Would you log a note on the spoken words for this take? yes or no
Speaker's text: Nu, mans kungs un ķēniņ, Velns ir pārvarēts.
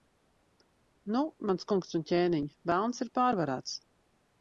no